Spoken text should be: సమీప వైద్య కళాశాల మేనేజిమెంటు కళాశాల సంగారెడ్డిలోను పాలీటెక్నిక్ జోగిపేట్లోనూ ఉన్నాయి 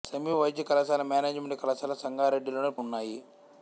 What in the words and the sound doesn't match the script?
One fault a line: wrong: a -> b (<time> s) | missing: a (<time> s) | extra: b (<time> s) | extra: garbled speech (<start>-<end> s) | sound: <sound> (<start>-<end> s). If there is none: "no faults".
missing: పాలీటెక్నిక్ జోగిపేట్లోనూ (2.7 s)